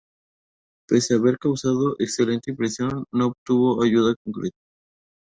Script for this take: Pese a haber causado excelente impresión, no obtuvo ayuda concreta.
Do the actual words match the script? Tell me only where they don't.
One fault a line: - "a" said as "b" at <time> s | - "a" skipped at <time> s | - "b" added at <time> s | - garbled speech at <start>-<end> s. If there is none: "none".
none